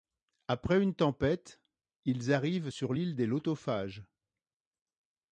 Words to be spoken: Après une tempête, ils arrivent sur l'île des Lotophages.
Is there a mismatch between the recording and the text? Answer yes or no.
no